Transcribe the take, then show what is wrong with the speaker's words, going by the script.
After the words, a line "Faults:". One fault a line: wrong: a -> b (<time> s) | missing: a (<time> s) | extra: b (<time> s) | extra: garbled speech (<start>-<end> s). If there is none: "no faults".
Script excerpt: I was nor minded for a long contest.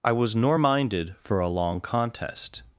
I was nor minded for a long contest.
Faults:
no faults